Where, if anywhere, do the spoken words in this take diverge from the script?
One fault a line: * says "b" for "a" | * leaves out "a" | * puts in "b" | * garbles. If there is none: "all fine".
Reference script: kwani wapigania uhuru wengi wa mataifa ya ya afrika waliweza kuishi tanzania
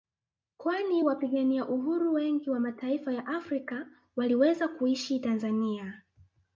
* leaves out "ya"